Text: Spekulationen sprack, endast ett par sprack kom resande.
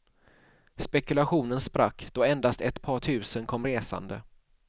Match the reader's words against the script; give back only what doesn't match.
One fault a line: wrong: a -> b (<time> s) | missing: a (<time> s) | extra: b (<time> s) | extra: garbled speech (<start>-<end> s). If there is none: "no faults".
extra: då (2.1 s)
wrong: sprack -> tusen (3.0 s)